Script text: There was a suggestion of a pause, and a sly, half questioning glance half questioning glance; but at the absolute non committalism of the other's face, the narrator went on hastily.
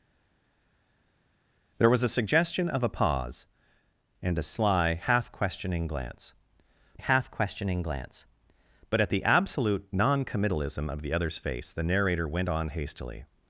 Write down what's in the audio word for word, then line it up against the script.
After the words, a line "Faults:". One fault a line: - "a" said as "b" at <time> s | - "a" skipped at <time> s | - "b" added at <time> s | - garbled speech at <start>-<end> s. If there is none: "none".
There was a suggestion of a pause, and a sly, half questioning glance half questioning glance; but at the absolute non committalism of the other's face, the narrator went on hastily.
Faults:
none